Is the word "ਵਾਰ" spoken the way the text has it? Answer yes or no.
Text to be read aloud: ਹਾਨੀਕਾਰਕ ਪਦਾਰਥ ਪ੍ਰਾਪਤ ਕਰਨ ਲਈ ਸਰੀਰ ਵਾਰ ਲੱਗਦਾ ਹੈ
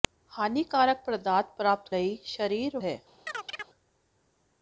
no